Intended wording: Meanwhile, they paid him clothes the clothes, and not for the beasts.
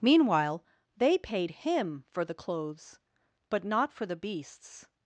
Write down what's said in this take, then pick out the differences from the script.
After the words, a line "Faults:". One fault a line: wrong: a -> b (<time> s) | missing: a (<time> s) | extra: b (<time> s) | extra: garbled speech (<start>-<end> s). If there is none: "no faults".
Meanwhile, they paid him for the clothes, but not for the beasts.
Faults:
wrong: clothes -> for (2.1 s)
wrong: and -> but (3.5 s)